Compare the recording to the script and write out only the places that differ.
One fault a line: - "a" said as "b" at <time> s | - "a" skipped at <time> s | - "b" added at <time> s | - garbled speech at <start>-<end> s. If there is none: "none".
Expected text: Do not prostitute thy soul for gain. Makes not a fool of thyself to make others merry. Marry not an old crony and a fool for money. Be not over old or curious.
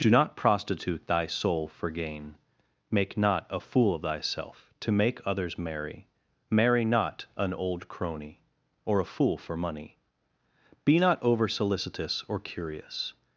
- "Makes" said as "Make" at 2.9 s
- "and" said as "or" at 8.9 s
- "old" said as "solicitous" at 11.5 s